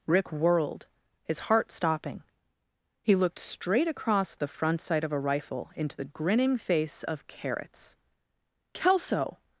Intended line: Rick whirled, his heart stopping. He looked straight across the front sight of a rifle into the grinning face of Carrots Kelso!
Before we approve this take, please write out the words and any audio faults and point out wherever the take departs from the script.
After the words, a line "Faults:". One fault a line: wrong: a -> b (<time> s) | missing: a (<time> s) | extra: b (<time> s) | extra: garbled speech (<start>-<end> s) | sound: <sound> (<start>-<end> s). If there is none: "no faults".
Rick whirled, his heart stopping. He looked straight across the front sight of a rifle into the grinning face of Carrots Kelso!
Faults:
no faults